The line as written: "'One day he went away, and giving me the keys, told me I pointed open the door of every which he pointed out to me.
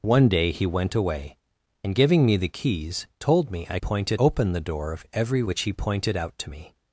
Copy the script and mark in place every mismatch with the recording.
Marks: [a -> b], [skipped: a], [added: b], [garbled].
"'One day he went away, and giving me the keys, told me I pointed open the door of every which he pointed out to me.